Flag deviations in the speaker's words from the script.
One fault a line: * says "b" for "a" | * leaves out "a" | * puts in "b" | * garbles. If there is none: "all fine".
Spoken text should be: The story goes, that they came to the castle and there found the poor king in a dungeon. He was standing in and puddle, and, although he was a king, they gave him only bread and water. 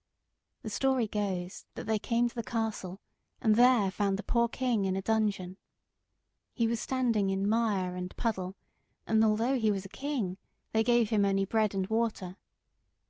* puts in "mire"